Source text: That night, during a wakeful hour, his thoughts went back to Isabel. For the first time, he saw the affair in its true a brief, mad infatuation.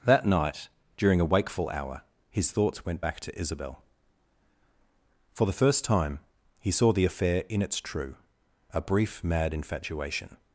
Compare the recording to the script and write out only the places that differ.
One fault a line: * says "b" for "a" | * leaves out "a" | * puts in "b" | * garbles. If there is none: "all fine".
all fine